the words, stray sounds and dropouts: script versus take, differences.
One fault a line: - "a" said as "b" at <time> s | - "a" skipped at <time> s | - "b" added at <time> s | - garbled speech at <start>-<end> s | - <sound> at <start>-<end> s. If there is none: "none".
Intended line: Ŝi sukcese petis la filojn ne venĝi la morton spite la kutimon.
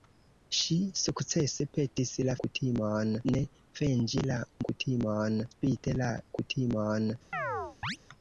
- "filojn" said as "kutimon" at 2.4 s
- "morton" said as "kutimon" at 4.7 s
- chirp at 7.3-8.0 s